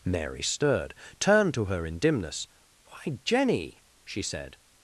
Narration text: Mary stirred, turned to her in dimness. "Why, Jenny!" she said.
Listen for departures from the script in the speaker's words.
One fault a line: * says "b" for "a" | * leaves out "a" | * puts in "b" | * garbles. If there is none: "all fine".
all fine